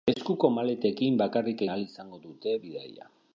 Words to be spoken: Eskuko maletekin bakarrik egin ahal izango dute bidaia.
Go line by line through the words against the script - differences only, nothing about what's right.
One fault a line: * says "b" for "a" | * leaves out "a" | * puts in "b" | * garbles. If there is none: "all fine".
* leaves out "egin"